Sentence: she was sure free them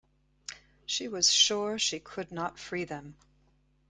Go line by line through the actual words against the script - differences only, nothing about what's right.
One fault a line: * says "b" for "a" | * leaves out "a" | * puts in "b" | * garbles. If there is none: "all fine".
* puts in "she could not"